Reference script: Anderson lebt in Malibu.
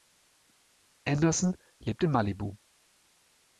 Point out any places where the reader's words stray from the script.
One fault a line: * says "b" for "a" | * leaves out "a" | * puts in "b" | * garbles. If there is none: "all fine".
all fine